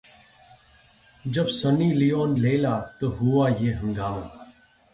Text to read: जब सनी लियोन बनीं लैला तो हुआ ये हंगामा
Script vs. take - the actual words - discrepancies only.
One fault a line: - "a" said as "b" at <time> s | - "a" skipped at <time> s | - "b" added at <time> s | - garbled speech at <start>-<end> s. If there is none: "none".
- "बनीं" skipped at 2.3 s